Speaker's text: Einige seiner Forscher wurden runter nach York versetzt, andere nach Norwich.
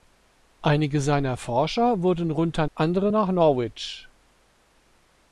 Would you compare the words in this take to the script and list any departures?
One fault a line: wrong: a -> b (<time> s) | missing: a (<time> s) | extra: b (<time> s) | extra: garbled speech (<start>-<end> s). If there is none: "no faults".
missing: nach York versetzt (2.6 s)